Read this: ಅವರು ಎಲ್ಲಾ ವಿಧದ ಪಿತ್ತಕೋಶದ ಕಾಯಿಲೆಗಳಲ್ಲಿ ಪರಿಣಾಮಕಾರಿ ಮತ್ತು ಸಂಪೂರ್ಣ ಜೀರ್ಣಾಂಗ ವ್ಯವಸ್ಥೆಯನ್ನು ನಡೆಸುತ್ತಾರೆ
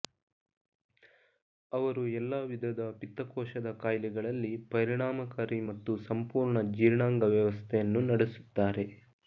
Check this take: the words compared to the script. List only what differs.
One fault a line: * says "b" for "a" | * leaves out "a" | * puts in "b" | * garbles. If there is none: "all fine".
all fine